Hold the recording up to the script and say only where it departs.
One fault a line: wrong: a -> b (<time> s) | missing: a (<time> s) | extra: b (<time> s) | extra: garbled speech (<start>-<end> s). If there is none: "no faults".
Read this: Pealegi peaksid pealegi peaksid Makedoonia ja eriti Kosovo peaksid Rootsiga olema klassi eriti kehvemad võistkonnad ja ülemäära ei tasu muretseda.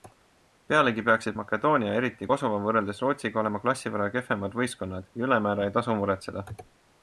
missing: pealegi peaksid (1.4 s)
wrong: peaksid -> võrreldes (2.7 s)
wrong: eriti -> võrra (4.0 s)